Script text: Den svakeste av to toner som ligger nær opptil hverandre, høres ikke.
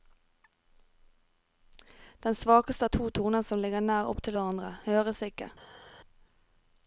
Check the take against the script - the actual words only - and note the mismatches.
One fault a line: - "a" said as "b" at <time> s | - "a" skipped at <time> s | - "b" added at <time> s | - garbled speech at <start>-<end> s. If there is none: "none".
none